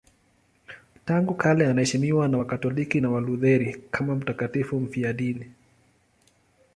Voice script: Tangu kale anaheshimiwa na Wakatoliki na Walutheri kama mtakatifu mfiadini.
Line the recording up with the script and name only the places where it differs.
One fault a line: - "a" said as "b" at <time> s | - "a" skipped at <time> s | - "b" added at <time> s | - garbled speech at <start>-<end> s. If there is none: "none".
none